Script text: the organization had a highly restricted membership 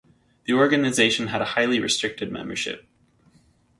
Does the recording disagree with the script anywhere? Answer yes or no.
no